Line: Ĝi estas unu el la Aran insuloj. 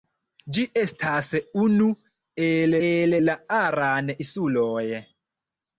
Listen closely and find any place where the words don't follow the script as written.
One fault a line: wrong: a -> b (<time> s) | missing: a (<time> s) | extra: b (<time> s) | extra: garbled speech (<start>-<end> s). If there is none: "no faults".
extra: el (2.9 s)